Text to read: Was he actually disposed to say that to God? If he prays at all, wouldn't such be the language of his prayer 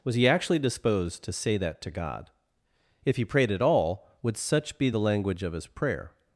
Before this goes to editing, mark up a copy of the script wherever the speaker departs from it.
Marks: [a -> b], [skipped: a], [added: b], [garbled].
Was he actually disposed to say that to God? If he [prays -> prayed] at all, [wouldn't -> would] such be the language of his prayer